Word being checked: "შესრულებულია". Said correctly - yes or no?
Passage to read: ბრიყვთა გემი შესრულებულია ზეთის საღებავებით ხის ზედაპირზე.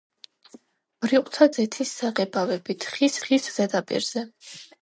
no